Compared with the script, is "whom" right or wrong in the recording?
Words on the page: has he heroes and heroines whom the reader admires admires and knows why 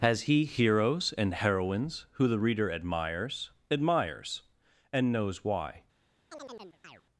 wrong